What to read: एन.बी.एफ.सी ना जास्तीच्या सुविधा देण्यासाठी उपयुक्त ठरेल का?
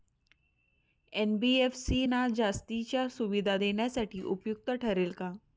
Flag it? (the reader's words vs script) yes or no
no